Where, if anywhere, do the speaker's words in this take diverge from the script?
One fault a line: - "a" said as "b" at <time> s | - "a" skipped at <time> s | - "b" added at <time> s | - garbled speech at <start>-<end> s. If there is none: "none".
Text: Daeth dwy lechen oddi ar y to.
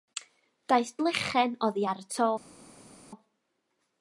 - "dwy" skipped at 0.9 s